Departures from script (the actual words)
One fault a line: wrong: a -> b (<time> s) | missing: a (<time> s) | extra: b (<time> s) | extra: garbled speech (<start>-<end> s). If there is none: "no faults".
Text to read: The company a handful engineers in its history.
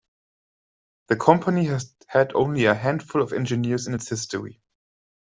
extra: has had only (1.6 s)
extra: of (3.2 s)